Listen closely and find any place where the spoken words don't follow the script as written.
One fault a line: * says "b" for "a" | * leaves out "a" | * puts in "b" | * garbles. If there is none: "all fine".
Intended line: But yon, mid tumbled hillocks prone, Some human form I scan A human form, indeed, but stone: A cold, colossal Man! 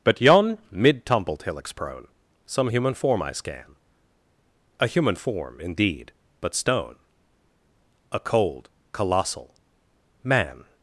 all fine